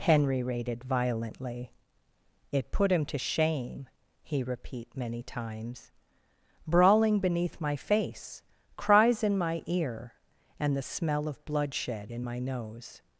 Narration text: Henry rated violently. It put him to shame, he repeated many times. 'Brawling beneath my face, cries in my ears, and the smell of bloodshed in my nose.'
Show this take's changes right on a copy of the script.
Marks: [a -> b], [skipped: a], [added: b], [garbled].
Henry rated violently. It put him to shame, he [repeated -> repeat] many times. 'Brawling beneath my face, cries in my [ears, -> ear] and the smell of bloodshed in my nose.'